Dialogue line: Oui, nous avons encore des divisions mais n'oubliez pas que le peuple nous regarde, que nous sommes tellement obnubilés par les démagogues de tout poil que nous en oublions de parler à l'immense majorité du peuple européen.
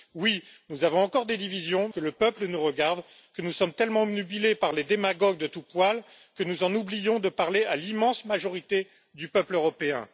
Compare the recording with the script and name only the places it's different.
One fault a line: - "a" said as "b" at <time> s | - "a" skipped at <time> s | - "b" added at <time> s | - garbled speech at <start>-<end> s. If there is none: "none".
- "mais n'oubliez pas" skipped at 1.9 s